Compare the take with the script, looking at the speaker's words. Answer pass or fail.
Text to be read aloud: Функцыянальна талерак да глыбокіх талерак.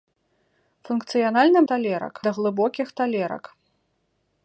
pass